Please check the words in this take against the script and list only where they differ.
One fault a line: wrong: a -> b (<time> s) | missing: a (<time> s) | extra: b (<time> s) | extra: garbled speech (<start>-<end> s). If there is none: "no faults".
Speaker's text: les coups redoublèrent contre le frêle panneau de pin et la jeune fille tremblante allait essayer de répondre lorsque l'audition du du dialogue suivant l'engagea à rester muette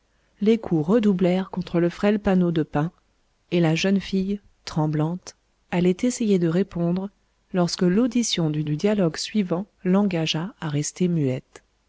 no faults